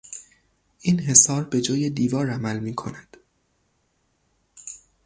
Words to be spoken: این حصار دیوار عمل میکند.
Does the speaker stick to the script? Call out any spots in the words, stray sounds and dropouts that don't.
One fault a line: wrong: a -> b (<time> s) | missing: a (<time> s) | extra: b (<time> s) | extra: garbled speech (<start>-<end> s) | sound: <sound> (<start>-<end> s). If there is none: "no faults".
extra: به جای (1.4 s)